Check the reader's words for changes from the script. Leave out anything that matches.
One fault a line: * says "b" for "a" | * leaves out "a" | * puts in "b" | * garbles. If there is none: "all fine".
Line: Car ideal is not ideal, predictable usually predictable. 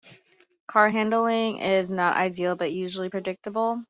* says "handling" for "ideal"
* says "but" for "predictable"